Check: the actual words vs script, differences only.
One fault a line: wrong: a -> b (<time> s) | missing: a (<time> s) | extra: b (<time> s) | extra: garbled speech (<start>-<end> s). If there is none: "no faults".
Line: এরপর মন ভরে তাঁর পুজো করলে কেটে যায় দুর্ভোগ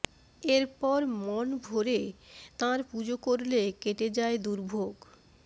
no faults